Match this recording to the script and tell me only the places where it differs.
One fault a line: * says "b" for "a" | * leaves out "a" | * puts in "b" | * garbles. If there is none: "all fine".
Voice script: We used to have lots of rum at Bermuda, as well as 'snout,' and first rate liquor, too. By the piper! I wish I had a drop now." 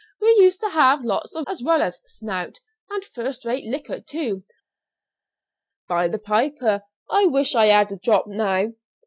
* leaves out "rum at Bermuda"